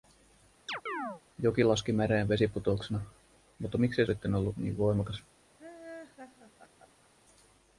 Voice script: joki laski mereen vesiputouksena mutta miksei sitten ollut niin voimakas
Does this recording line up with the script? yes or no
yes